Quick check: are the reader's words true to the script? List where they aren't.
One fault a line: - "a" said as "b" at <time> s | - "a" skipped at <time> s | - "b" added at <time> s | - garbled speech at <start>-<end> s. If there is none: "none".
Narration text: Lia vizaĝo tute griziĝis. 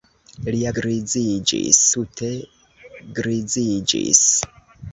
- "vizaĝo" said as "griziĝis" at 0.8 s